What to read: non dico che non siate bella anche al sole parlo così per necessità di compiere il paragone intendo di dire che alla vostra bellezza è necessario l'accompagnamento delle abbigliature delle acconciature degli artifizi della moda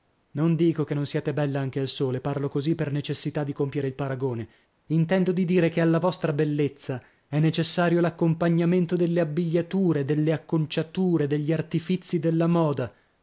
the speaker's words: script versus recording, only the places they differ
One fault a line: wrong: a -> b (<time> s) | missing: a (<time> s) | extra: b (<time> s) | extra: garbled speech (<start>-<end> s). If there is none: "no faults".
no faults